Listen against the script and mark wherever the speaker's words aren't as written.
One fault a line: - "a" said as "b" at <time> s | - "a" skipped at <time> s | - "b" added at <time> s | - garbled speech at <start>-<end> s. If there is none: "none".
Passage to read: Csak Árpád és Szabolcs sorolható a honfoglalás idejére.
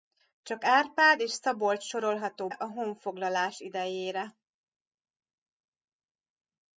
none